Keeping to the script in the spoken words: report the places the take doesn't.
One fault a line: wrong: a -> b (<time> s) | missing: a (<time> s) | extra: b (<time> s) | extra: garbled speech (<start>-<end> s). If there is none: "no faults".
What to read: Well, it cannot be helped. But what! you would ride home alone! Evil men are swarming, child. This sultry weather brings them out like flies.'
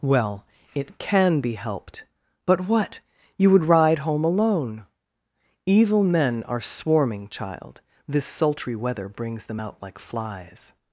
wrong: cannot -> can (1.0 s)